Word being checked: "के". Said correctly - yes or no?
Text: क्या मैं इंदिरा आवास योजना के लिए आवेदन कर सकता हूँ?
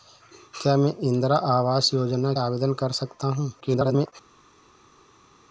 no